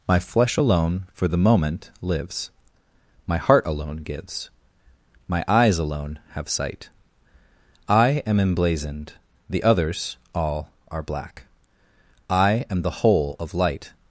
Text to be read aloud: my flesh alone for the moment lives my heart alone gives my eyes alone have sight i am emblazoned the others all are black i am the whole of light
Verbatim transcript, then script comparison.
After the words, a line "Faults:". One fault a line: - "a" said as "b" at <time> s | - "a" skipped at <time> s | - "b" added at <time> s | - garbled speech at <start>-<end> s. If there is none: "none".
my flesh alone for the moment lives my heart alone gives my eyes alone have sight i am emblazoned the others all are black i am the whole of light
Faults:
none